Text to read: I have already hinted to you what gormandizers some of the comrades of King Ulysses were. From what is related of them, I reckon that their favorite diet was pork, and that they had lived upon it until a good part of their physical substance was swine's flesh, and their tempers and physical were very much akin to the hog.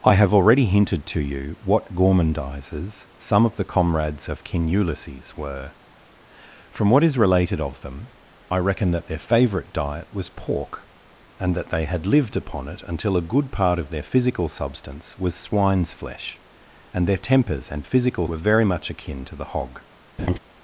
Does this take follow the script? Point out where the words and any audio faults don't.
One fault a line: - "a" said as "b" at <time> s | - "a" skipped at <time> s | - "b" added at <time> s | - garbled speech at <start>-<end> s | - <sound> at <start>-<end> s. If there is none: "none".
- laugh at 20.2-20.4 s